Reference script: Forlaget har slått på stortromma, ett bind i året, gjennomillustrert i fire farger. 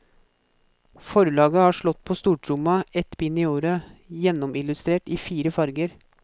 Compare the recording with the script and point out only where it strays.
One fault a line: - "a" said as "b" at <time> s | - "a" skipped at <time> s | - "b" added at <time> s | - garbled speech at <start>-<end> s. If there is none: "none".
none